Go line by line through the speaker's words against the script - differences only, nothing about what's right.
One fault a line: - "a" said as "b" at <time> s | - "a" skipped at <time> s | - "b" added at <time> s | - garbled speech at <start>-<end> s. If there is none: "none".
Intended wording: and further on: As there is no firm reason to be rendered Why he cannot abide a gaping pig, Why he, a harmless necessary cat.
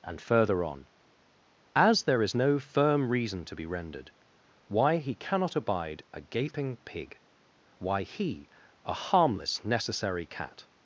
none